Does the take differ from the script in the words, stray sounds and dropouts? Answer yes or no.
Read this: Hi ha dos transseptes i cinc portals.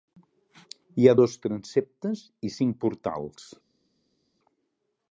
no